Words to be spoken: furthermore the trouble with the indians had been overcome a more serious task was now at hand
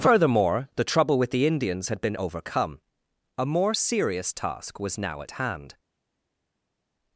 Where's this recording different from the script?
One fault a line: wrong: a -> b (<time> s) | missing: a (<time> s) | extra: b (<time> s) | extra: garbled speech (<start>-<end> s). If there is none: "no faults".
no faults